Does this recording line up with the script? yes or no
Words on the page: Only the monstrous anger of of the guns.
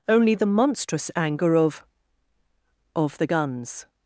yes